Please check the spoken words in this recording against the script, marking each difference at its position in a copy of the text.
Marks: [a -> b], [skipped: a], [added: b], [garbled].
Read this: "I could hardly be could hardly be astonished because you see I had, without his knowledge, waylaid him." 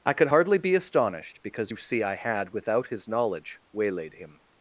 "I could hardly be [skipped: could hardly be] astonished because you see I had, without his knowledge, waylaid him."